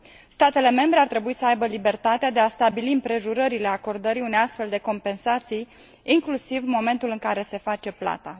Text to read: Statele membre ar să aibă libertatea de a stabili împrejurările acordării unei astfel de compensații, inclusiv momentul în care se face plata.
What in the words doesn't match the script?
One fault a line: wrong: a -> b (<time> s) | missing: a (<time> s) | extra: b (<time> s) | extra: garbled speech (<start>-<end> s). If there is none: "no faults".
extra: trebui (1.1 s)